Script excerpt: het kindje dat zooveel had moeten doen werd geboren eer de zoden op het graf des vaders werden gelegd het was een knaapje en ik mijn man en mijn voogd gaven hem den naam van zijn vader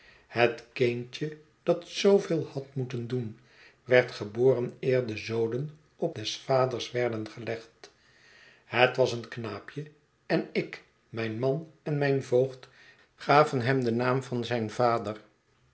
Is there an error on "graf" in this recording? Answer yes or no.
yes